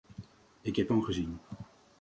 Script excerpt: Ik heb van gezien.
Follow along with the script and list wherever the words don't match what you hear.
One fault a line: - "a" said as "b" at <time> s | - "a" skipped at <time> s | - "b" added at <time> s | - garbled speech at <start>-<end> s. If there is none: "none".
none